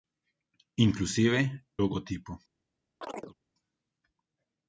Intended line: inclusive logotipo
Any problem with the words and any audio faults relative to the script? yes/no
yes